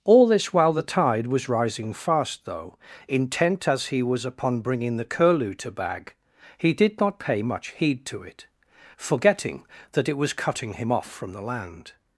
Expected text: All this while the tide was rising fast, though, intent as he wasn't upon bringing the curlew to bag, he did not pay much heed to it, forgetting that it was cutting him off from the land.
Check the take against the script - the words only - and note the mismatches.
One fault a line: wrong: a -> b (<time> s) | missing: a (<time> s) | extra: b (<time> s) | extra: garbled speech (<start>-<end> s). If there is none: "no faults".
wrong: wasn't -> was (4.0 s)